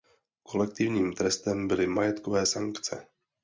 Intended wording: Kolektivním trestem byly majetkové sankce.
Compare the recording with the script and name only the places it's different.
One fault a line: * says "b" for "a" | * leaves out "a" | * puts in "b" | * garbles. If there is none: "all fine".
all fine